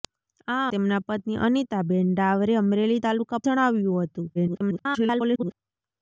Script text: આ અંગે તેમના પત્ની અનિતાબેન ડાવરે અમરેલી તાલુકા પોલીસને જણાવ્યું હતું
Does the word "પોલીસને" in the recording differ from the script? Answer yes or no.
yes